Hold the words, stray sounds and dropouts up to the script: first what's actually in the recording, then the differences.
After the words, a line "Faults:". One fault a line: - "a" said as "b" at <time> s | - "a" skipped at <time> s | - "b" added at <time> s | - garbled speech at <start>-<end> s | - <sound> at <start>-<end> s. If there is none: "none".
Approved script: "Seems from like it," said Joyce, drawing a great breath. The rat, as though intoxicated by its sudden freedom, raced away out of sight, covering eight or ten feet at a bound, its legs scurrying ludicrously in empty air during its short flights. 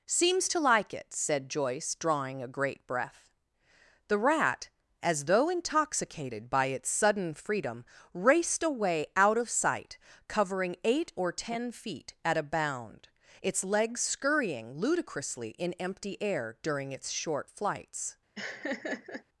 "Seems to like it," said Joyce, drawing a great breath. The rat, as though intoxicated by its sudden freedom, raced away out of sight, covering eight or ten feet at a bound, its legs scurrying ludicrously in empty air during its short flights.
Faults:
- "from" said as "to" at 0.5 s
- laugh at 18.3-19.2 s